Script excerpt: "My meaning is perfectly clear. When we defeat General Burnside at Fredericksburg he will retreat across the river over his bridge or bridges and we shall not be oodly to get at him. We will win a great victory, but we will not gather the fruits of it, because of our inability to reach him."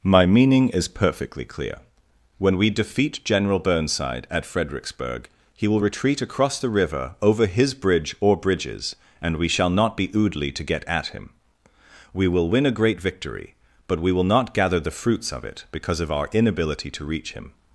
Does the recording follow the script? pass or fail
pass